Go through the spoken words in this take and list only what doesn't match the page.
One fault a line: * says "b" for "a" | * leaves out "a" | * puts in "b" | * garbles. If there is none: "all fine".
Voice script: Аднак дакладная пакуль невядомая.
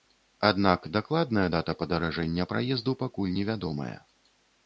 * puts in "дата падаражэння праезду"